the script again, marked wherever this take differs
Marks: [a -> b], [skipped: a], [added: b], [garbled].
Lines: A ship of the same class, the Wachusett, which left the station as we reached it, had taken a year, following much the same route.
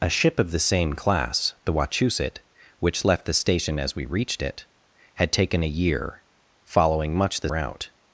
A ship of the same class, the Wachusett, which left the station as we reached it, had taken a year, following much the [skipped: same] route.